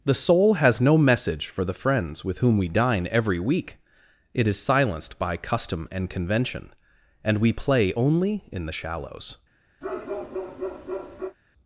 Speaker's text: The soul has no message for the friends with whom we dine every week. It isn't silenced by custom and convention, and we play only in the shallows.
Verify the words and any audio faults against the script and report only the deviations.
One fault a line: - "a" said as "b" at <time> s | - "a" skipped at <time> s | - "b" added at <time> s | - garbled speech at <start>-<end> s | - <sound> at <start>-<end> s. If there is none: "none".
- "isn't" said as "is" at 4.5 s
- bark at 9.8-11.4 s